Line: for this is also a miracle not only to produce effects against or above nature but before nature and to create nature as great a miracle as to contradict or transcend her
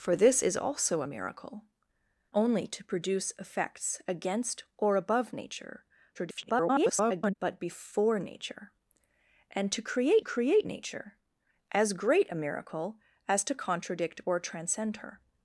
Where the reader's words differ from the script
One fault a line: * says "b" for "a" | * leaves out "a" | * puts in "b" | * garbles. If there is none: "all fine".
* leaves out "not"
* garbles
* puts in "create"